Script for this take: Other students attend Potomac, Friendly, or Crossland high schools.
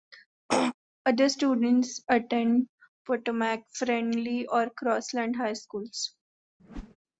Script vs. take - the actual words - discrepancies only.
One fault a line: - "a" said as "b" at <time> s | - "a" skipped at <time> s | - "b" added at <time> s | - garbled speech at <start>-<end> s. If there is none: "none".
none